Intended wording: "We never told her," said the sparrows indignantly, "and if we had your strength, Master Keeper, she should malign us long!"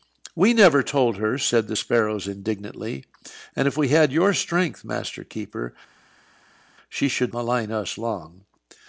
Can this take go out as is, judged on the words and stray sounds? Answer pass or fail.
pass